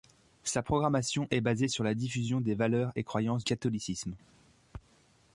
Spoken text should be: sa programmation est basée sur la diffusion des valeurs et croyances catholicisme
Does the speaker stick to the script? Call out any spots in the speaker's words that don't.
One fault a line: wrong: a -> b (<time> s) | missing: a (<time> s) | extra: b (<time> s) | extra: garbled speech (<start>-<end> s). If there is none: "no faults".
no faults